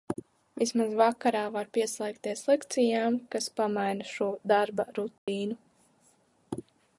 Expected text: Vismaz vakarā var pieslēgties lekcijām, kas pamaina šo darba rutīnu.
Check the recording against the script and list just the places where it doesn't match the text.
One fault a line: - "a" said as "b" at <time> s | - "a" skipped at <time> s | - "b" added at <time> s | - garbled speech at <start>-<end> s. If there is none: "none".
none